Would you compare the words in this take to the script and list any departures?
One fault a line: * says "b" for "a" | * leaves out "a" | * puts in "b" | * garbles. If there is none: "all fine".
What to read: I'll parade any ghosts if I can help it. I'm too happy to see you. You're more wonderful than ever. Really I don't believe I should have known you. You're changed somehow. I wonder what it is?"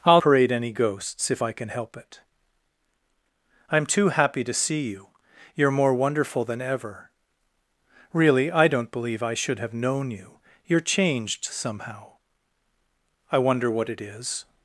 all fine